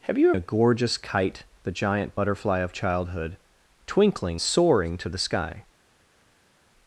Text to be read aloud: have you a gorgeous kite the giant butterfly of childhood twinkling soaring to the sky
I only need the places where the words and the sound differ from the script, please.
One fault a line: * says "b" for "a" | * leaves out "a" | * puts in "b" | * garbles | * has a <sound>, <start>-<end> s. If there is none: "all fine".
all fine